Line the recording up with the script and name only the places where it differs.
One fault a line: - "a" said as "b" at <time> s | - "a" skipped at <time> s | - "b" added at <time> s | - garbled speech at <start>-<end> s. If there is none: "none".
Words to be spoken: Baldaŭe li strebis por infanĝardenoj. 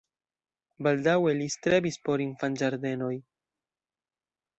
none